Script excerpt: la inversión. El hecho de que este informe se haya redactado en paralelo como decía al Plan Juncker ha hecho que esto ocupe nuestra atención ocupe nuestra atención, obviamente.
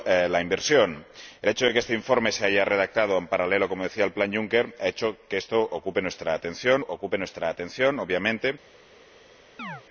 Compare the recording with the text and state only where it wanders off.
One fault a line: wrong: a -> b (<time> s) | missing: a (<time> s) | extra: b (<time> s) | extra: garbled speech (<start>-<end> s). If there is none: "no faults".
no faults